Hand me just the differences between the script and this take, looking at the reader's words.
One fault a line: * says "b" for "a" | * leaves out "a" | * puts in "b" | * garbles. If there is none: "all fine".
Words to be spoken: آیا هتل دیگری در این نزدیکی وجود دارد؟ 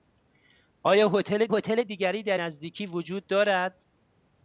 * puts in "هتل"
* leaves out "این"